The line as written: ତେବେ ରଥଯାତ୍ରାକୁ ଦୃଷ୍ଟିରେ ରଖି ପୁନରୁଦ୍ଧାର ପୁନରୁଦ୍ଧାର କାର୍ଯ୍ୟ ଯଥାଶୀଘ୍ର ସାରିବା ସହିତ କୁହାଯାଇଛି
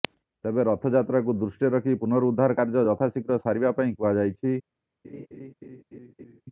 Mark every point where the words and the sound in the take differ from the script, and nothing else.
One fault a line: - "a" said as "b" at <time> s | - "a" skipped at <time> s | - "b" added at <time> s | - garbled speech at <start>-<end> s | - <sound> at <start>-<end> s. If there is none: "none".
- "ପୁନରୁଦ୍ଧାର" skipped at 2.6 s
- "ସହିତ" said as "ପାଇଁ" at 3.8 s
- laugh at 5.0-6.4 s